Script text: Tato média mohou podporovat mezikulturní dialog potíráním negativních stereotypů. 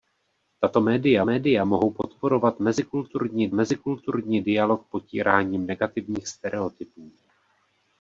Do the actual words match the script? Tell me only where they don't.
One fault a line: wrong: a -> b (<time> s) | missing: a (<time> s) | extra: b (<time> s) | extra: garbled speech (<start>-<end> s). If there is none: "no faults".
extra: média (1.2 s)
extra: mezikulturní (3.5 s)